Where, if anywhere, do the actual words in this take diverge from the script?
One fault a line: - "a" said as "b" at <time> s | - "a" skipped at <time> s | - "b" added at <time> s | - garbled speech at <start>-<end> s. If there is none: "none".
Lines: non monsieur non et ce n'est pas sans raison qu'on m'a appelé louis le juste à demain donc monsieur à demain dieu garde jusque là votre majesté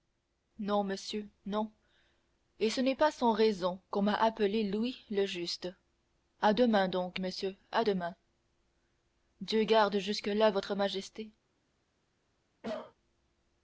none